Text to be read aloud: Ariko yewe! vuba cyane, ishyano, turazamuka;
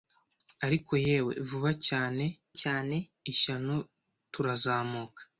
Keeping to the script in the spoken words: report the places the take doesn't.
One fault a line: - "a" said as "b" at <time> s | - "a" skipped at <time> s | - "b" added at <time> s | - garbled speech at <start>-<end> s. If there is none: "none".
- "cyane" added at 2.6 s